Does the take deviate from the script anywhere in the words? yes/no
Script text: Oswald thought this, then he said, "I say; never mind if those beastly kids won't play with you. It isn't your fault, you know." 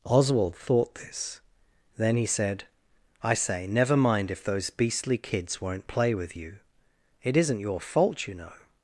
no